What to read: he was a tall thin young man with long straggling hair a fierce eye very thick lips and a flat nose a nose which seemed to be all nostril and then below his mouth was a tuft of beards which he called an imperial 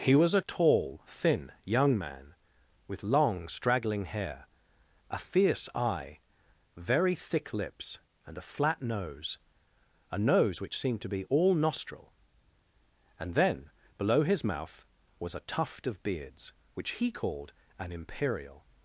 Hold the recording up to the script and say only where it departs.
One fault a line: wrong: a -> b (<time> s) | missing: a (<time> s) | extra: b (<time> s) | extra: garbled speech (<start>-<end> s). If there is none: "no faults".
no faults